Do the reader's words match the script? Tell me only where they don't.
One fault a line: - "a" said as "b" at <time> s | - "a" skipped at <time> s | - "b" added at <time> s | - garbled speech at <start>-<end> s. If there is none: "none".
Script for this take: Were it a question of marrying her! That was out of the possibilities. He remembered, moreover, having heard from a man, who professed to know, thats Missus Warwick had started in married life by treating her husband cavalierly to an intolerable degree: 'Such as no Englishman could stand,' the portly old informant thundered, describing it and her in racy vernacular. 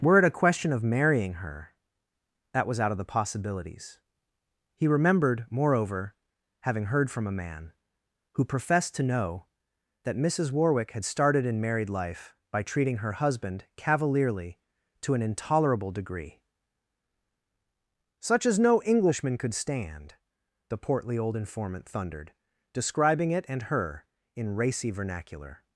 - "thats" said as "that" at 10.0 s